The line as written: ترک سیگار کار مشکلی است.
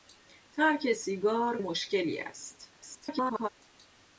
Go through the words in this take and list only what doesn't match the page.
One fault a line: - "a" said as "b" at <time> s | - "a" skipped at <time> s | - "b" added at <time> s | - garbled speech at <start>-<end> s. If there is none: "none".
- "کار" skipped at 1.6 s
- garbled speech at 2.8-3.5 s